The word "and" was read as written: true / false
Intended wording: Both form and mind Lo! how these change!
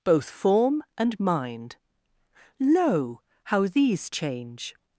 true